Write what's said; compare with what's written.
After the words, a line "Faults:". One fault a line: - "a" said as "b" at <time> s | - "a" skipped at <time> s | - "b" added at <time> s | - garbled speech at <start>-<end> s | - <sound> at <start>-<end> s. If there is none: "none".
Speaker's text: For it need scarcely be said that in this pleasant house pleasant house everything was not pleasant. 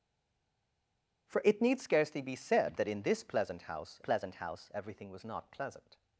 For it need scarcely be said that in this pleasant house pleasant house everything was not pleasant.
Faults:
none